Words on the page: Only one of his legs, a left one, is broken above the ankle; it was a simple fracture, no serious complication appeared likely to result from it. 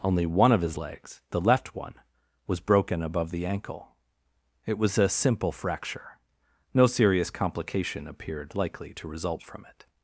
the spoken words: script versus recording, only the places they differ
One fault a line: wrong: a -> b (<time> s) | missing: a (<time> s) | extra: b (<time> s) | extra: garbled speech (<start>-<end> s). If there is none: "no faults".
wrong: a -> the (1.3 s)
wrong: is -> was (2.5 s)